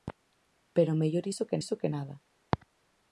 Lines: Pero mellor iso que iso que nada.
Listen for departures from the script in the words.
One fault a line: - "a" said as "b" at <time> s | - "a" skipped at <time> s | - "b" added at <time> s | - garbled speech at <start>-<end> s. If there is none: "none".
none